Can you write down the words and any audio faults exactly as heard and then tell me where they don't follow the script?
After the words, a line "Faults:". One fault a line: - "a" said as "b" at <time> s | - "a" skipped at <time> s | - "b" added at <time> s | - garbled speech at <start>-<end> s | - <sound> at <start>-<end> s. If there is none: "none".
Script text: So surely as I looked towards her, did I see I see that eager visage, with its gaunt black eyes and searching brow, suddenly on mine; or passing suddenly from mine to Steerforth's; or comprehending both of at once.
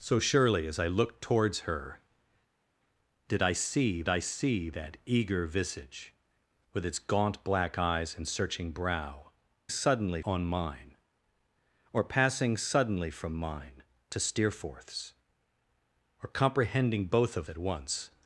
So surely as I looked towards her, did I see I see that eager visage, with its gaunt black eyes and searching brow, suddenly on mine; or passing suddenly from mine to Steerforth's; or comprehending both of at once.
Faults:
none